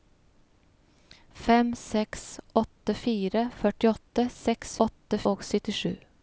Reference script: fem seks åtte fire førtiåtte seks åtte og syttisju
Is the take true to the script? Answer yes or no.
yes